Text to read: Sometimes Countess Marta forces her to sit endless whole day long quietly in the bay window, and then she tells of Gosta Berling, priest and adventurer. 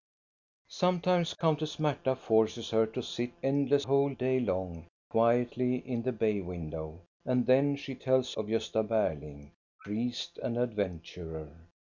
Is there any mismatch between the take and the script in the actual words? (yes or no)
no